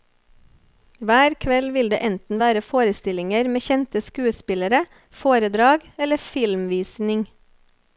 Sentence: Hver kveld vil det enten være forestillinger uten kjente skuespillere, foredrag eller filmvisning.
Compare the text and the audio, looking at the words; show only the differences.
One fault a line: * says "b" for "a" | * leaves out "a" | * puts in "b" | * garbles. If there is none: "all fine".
* says "med" for "uten"